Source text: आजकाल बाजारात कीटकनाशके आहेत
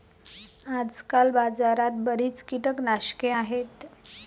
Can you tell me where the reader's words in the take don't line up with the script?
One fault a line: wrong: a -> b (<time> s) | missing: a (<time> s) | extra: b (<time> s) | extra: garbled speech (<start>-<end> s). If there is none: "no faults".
extra: बरीच (2.0 s)